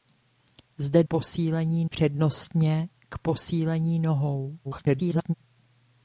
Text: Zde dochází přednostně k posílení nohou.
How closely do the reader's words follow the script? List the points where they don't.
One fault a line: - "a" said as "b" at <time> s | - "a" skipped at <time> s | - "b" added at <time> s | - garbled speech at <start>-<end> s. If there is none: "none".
- "dochází" said as "posílení" at 1.0 s
- garbled speech at 4.6-5.3 s